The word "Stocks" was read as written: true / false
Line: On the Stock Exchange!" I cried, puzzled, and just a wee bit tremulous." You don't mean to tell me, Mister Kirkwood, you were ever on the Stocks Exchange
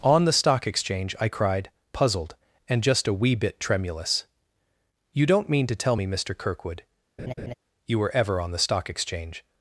false